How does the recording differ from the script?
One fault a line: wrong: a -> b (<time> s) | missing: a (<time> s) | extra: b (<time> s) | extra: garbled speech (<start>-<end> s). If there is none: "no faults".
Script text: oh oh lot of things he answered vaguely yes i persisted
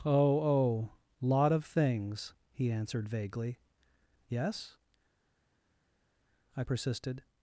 no faults